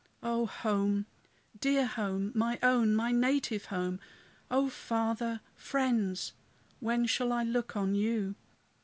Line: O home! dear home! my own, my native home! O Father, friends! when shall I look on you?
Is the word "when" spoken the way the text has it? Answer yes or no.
yes